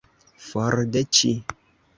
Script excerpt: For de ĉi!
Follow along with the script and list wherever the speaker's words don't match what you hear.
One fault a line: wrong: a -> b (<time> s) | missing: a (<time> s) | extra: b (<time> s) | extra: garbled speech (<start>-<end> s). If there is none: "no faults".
no faults